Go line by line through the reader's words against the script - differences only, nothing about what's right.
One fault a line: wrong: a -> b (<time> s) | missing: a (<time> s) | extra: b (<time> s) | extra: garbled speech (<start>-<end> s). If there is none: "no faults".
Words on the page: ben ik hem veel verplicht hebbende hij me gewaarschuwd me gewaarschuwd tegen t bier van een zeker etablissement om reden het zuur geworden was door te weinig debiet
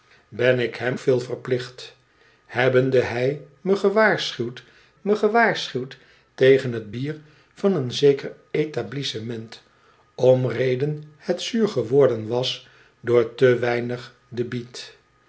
no faults